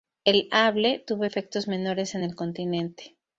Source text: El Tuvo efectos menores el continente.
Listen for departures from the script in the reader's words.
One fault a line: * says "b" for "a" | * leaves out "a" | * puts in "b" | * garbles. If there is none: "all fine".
* puts in "Able"
* puts in "en"